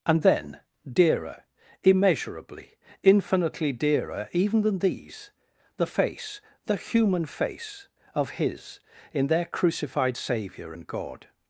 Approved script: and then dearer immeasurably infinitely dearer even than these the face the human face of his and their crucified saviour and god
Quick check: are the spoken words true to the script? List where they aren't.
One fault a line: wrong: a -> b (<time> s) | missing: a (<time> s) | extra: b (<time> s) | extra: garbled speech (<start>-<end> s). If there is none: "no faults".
wrong: and -> in (9.1 s)